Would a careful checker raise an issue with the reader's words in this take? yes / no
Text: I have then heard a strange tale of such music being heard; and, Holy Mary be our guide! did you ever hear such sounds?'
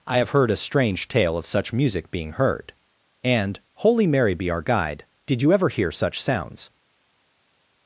yes